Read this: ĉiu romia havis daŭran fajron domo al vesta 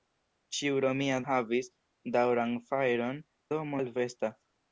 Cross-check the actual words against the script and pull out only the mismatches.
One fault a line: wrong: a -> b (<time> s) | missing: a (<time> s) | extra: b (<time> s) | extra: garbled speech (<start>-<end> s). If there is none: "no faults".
no faults